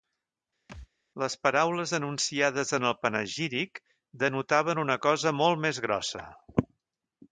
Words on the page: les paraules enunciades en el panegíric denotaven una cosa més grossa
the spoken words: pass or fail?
fail